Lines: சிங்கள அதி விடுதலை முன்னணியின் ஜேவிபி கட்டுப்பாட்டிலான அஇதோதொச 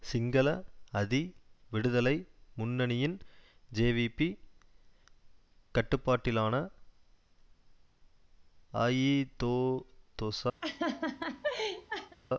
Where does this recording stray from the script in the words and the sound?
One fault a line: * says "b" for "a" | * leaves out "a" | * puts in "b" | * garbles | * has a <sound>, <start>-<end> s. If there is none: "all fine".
* has a laugh, 10.6-12.2 s